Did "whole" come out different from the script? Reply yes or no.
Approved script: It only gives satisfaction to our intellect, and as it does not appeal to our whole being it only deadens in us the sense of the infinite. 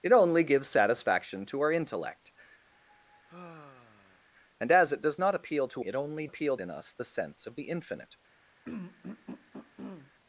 yes